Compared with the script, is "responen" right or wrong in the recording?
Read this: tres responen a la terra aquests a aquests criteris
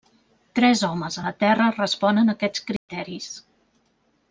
wrong